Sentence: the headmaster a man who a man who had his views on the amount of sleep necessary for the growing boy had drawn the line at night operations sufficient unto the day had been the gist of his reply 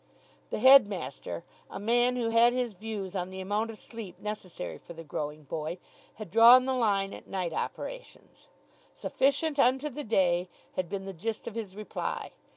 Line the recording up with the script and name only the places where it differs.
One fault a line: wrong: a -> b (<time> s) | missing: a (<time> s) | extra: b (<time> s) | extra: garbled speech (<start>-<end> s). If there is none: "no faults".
missing: a man who (2.3 s)